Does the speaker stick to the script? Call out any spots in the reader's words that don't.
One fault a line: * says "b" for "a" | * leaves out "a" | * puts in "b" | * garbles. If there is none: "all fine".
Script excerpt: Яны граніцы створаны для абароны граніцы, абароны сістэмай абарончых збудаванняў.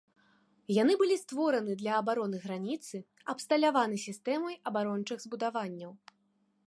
* says "былі" for "граніцы"
* says "абсталяваны" for "абароны"